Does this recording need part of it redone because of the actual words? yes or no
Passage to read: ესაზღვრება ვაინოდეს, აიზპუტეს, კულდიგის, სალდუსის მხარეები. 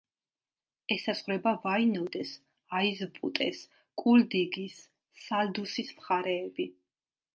no